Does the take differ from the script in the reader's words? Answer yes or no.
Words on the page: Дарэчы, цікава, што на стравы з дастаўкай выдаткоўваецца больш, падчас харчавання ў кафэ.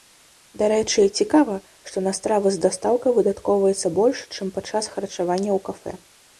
yes